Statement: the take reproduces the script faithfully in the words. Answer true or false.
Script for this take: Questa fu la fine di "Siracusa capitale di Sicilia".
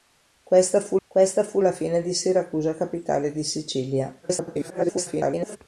false